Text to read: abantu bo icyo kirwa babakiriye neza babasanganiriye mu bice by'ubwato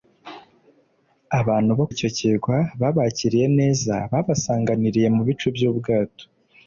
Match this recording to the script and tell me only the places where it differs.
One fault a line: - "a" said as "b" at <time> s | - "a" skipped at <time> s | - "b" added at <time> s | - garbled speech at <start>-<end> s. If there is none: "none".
none